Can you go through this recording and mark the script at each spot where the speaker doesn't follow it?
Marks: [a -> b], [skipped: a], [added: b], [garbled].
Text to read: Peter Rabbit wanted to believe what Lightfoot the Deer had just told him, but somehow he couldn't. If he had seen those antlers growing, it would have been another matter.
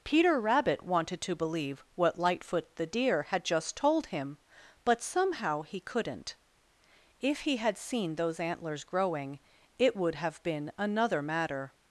Peter Rabbit wanted to believe what Lightfoot the Deer had just told him, but somehow he couldn't. If he had seen those antlers growing, it would have been another matter.